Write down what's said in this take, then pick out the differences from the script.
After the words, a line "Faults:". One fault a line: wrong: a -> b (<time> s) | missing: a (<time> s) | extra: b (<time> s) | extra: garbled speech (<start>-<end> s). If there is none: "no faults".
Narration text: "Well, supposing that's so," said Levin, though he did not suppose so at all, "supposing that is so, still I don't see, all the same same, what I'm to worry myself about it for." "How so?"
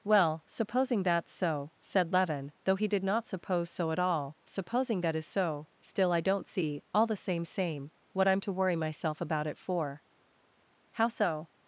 "Well, supposing that's so," said Levin, though he did not suppose so at all, "supposing that is so, still I don't see, all the same same, what I'm to worry myself about it for." "How so?"
Faults:
no faults